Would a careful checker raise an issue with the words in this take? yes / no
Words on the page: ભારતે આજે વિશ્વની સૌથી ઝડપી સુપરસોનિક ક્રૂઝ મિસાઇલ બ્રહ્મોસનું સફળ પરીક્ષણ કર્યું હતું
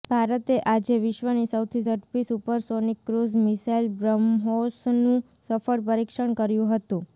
no